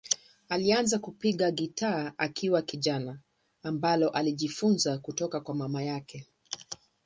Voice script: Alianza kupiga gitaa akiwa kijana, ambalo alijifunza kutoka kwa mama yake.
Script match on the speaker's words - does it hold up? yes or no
yes